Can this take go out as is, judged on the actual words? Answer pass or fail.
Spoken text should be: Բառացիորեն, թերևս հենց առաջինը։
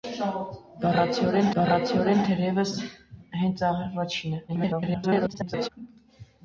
fail